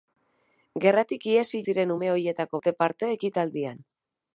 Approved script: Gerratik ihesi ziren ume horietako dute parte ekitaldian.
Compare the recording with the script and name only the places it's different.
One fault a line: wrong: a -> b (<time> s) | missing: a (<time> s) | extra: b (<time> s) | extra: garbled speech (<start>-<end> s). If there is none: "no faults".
no faults